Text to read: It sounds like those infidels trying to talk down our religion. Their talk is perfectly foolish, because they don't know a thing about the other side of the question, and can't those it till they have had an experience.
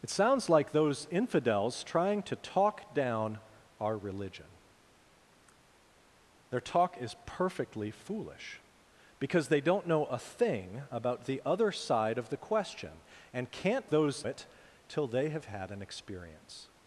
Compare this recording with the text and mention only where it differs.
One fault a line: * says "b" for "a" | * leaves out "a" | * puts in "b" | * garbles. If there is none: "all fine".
all fine